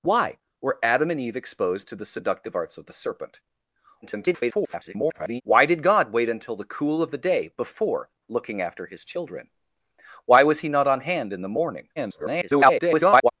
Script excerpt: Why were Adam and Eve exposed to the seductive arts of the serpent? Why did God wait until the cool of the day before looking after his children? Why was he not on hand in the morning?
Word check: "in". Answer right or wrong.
right